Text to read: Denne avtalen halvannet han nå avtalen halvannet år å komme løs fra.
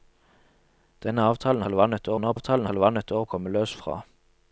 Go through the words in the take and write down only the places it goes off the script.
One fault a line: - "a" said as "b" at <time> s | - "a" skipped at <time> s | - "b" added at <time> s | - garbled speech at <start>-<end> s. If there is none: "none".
none